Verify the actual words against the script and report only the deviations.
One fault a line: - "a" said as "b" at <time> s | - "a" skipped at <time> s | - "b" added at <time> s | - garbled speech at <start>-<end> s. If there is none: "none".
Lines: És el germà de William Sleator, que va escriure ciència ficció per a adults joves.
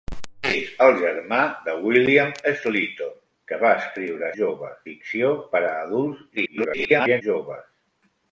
- "ciència" said as "joves" at 4.4 s
- garbled speech at 6.4-7.2 s